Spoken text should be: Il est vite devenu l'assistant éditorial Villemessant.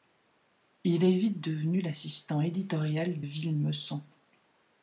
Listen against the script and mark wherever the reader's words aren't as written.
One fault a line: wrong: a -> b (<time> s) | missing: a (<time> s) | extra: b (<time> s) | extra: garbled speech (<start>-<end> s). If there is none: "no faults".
no faults